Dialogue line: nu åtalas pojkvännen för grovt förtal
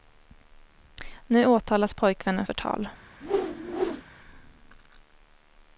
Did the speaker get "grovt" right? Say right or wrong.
wrong